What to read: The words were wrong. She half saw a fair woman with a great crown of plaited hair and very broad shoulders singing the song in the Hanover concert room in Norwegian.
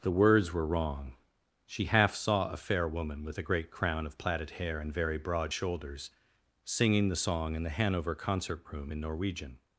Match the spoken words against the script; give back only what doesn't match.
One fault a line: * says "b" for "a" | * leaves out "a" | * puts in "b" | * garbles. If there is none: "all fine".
all fine